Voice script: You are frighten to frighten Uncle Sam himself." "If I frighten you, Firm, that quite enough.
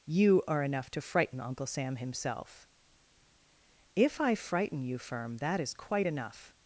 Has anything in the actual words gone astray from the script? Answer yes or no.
yes